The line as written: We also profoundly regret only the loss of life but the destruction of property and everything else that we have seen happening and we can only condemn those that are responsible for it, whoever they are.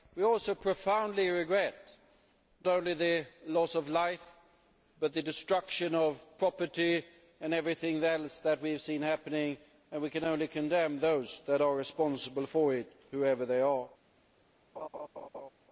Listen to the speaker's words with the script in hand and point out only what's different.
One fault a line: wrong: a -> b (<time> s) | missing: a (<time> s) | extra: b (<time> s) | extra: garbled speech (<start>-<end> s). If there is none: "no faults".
no faults